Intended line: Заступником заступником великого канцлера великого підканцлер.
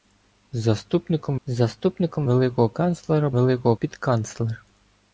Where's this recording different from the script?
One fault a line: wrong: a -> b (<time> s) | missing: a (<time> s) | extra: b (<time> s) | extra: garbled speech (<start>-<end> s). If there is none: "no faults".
no faults